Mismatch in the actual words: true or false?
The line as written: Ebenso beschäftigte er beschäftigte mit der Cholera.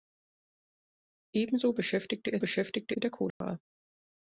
false